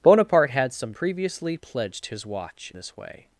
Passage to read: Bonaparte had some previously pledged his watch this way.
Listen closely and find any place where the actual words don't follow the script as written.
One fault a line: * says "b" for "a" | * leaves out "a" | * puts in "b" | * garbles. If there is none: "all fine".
all fine